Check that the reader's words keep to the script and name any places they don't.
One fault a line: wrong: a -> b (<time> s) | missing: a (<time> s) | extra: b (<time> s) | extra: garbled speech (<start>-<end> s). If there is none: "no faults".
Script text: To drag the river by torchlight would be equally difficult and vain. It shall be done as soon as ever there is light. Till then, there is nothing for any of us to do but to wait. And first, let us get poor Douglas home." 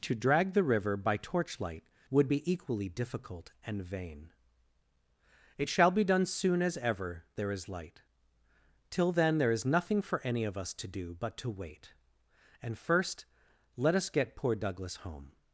missing: as (6.3 s)